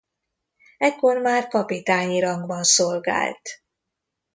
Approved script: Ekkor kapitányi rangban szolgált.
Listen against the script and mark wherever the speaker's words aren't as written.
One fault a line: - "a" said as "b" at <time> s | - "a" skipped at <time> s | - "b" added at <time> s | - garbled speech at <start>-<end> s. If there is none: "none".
- "már" added at 1.2 s